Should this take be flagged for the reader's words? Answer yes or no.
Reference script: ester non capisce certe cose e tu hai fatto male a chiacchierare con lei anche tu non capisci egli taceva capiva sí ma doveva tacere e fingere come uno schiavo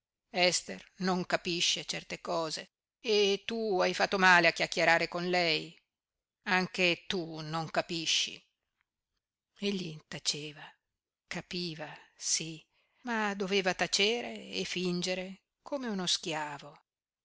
no